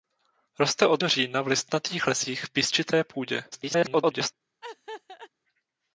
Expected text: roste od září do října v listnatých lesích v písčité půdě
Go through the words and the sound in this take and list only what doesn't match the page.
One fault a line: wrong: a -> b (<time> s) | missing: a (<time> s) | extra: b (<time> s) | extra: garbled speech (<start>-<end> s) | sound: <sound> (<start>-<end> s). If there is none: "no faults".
missing: září (1.0 s)
extra: garbled speech (3.5-4.3 s)
sound: laugh (4.6-5.3 s)